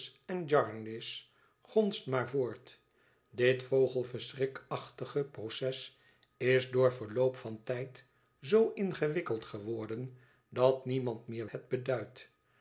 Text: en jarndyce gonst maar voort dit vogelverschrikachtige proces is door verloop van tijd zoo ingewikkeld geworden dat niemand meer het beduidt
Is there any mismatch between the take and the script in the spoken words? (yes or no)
no